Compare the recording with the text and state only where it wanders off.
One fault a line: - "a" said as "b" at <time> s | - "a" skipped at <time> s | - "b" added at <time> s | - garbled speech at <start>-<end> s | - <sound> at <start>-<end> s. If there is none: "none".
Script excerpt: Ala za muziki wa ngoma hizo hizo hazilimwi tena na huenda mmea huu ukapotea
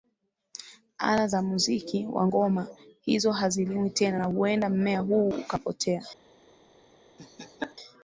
- "hizo" skipped at 3.3 s
- laugh at 7.2-7.8 s